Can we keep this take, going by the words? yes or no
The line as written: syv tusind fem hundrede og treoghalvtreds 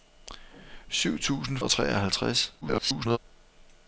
no